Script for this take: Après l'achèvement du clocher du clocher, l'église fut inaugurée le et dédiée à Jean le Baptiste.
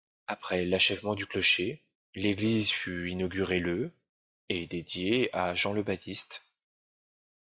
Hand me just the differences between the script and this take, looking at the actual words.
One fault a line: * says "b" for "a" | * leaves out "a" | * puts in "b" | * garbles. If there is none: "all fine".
* leaves out "du clocher"